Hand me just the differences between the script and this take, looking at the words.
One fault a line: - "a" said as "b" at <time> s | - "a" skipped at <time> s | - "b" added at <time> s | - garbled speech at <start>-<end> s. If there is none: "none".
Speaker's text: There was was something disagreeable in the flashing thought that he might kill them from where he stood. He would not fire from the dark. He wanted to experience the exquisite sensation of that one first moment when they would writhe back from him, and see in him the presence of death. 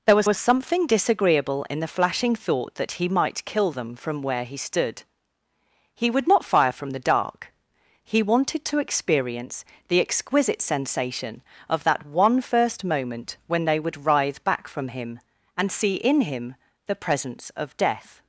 none